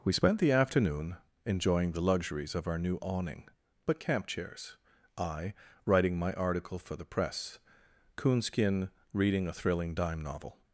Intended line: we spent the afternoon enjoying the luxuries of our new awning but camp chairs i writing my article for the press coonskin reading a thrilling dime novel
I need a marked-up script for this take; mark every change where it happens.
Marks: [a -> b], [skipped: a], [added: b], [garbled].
we spent the afternoon enjoying the luxuries of our new awning but camp chairs i writing my article for the press coonskin reading a thrilling dime novel